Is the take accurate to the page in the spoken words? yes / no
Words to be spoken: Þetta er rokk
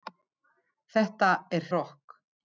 yes